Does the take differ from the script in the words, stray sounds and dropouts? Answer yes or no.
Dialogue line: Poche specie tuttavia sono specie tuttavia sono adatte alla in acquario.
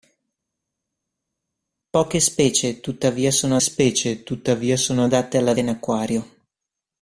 no